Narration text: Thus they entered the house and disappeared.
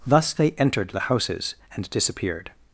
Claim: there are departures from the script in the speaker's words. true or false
true